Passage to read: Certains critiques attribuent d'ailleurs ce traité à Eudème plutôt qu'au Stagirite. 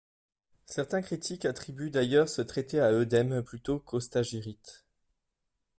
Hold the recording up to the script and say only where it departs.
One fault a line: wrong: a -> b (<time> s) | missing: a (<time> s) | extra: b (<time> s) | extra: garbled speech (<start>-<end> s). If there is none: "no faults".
no faults